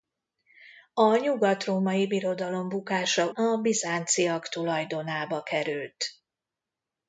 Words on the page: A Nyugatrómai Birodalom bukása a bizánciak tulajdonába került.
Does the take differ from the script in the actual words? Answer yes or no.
no